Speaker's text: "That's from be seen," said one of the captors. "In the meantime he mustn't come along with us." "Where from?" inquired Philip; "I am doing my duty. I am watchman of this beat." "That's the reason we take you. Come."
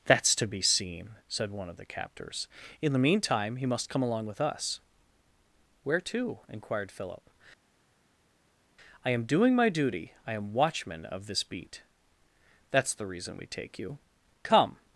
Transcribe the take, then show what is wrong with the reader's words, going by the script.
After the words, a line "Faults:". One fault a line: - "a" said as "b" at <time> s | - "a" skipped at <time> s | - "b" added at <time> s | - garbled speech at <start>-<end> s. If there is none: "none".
"That's to be seen," said one of the captors. "In the meantime he must come along with us." "Where to?" inquired Philip; "I am doing my duty. I am watchman of this beat." "That's the reason we take you. Come."
Faults:
- "from" said as "to" at 0.3 s
- "mustn't" said as "must" at 3.6 s
- "from" said as "to" at 6.0 s